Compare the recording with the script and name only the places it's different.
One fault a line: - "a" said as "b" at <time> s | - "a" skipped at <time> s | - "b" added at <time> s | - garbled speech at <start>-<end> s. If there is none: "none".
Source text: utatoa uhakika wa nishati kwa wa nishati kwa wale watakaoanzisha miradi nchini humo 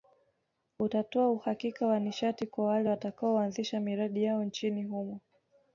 - "wa nishati kwa" skipped at 2.6 s
- "yao" added at 4.2 s